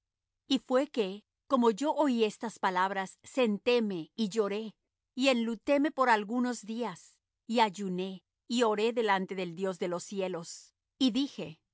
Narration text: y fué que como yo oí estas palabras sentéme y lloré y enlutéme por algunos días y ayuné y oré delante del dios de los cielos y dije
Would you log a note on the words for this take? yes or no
no